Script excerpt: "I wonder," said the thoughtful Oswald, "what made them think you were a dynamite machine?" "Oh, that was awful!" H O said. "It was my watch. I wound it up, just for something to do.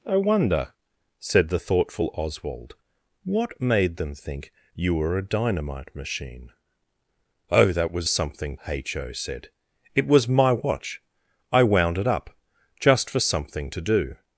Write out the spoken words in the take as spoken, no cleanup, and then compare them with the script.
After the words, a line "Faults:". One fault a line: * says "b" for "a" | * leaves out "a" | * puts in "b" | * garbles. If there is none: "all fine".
"I wonder," said the thoughtful Oswald, "what made them think you were a dynamite machine?" "Oh, that was something!" H O said. "It was my watch. I wound it up, just for something to do.
Faults:
* says "something" for "awful"